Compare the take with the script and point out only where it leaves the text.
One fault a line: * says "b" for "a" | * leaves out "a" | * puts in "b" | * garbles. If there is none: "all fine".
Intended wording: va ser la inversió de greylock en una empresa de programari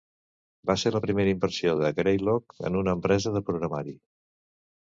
* puts in "primera"